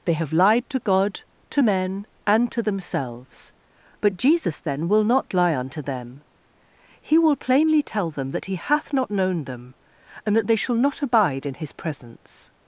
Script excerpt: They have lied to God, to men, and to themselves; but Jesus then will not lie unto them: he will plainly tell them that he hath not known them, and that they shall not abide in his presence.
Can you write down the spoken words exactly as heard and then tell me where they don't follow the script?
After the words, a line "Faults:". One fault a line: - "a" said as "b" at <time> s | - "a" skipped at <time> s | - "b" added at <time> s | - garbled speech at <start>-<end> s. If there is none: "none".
They have lied to God, to men, and to themselves; but Jesus then will not lie unto them: he will plainly tell them that he hath not known them, and that they shall not abide in his presence.
Faults:
none